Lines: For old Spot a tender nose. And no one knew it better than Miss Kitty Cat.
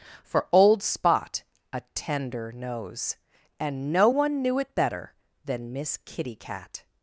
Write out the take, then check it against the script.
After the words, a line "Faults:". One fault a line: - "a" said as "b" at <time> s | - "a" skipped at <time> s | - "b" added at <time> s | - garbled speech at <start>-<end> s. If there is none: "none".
For old Spot a tender nose. And no one knew it better than Miss Kitty Cat.
Faults:
none